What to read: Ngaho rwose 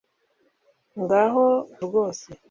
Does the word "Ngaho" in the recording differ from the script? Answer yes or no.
no